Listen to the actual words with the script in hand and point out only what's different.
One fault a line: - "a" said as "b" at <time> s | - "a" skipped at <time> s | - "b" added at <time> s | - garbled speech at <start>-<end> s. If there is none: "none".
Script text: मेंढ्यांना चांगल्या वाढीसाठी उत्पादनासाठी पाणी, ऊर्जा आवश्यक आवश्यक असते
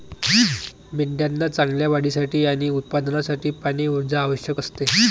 - "आणि" added at 2.5 s
- "आवश्यक" skipped at 4.6 s